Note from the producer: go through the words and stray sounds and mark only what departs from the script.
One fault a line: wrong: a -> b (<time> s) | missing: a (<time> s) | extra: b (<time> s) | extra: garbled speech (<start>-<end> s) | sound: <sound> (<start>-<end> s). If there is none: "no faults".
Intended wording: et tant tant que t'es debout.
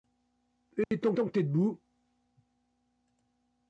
sound: dropout (0.8-0.9 s)